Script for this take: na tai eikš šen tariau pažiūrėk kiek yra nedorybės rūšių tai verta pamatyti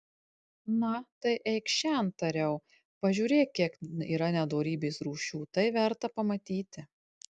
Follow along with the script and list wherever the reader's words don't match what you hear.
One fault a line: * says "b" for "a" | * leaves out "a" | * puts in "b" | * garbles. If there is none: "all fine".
all fine